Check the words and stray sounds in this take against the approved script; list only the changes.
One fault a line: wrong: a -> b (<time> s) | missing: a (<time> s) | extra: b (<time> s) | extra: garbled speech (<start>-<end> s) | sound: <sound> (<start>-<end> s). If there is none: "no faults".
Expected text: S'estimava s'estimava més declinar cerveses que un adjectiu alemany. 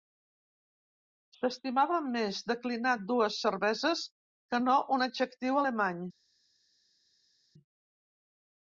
missing: s'estimava (2.0 s)
extra: dues (3.1 s)
extra: no (4.6 s)